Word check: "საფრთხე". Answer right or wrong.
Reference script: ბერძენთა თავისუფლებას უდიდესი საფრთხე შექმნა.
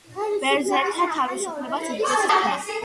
wrong